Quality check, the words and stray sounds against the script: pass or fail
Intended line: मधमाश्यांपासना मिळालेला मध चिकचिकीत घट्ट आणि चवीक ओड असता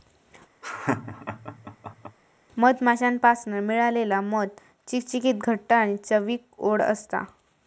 fail